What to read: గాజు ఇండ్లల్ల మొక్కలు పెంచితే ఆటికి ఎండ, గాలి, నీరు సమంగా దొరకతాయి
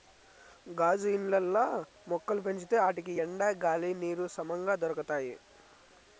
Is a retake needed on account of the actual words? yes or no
no